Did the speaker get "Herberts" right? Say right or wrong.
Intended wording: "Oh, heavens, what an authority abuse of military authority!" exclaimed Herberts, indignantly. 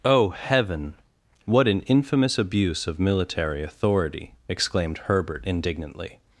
wrong